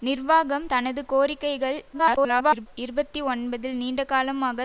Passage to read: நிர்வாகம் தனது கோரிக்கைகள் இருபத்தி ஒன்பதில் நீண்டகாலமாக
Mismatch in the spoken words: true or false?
true